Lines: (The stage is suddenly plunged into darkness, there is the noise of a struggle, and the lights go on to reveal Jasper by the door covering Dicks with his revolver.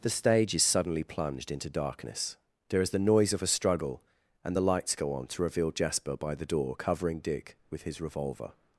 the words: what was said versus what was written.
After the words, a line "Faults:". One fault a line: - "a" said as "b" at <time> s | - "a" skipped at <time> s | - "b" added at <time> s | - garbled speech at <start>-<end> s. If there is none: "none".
(The stage is suddenly plunged into darkness, there is the noise of a struggle, and the lights go on to reveal Jasper by the door covering Dick with his revolver.
Faults:
- "Dicks" said as "Dick" at 7.2 s